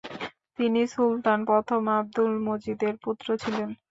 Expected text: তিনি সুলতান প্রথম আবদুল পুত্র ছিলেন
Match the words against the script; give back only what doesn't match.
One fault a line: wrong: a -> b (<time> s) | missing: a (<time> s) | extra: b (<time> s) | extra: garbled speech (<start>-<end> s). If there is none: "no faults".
extra: মজিদের (2.5 s)